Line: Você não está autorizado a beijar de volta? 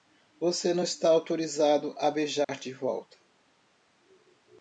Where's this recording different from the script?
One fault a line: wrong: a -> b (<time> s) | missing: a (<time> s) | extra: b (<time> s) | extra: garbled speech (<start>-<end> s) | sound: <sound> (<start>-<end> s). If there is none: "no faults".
sound: dropout (2.4-2.5 s)